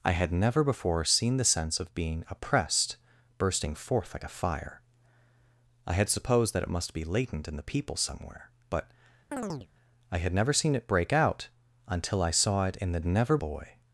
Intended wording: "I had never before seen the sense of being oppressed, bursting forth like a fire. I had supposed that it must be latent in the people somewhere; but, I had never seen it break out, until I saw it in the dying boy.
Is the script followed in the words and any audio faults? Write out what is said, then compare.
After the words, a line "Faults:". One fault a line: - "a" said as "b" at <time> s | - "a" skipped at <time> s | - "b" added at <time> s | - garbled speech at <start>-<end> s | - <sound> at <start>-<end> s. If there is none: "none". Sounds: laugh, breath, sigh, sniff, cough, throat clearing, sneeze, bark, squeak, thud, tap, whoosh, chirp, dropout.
"I had never before seen the sense of being oppressed, bursting forth like a fire. I had supposed that it must be latent in the people somewhere; but, I had never seen it break out, until I saw it in the never boy.
Faults:
- chirp at 9.3-9.7 s
- "dying" said as "never" at 13.0 s